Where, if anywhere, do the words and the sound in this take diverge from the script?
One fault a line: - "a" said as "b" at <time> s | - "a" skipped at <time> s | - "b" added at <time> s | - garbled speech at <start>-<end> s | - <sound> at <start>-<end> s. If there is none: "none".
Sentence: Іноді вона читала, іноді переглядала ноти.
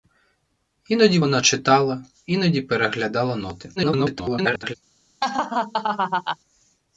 - garbled speech at 3.8-4.7 s
- laugh at 5.2-6.4 s